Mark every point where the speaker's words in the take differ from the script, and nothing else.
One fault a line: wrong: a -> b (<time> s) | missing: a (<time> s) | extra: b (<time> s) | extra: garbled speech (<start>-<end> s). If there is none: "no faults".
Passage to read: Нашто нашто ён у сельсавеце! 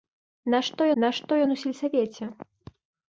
no faults